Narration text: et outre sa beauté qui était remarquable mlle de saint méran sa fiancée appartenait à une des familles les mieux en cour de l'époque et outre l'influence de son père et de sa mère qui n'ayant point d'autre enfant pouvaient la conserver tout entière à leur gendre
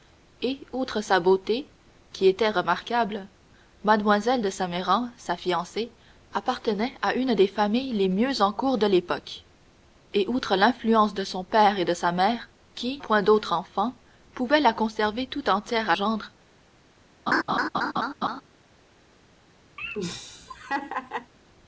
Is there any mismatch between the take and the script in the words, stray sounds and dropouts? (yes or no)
yes